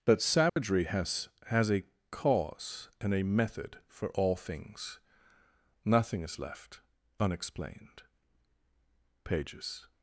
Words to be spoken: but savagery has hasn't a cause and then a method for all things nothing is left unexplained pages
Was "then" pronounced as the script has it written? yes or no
no